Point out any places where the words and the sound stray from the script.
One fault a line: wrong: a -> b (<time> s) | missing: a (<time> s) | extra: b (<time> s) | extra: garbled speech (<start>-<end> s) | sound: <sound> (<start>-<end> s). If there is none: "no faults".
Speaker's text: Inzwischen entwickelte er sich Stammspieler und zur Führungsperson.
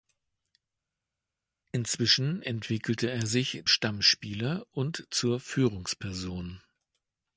no faults